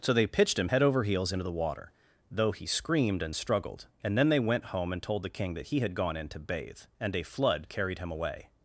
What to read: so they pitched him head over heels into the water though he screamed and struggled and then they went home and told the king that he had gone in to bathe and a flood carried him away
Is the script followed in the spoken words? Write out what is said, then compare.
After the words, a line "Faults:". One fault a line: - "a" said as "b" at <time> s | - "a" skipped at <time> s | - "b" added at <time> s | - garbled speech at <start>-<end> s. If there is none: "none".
so they pitched him head over heels into the water though he screamed and struggled and then they went home and told the king that he had gone in to bathe and a flood carried him away
Faults:
none